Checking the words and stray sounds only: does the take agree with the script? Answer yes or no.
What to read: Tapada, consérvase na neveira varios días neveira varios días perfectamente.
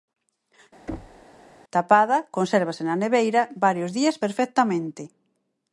no